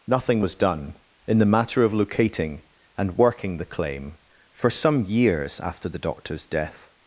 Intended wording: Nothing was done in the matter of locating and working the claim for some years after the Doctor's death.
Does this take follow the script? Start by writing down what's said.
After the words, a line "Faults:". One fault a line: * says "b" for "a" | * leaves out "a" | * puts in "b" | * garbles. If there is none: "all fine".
Nothing was done in the matter of locating and working the claim for some years after the Doctor's death.
Faults:
all fine